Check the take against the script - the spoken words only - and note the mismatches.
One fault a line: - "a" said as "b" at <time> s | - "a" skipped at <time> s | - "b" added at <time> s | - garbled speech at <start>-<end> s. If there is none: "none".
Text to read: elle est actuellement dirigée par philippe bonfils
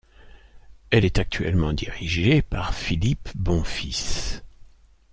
none